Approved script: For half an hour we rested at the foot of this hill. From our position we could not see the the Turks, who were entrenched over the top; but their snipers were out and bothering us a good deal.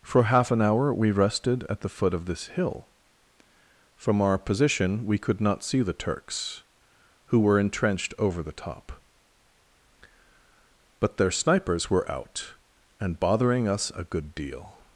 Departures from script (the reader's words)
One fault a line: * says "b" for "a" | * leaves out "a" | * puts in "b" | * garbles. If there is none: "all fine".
* leaves out "the"